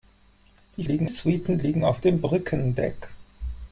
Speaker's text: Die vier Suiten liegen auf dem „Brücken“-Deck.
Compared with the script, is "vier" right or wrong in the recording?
wrong